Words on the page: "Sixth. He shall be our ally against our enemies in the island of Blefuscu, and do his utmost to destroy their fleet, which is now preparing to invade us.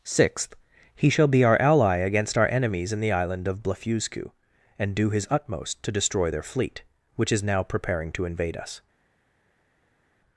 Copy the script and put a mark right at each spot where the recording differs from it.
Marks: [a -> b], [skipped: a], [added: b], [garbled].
"Sixth. He shall be our ally against our enemies in the island of Blefuscu, and do his utmost to destroy their fleet, which is now preparing to invade us.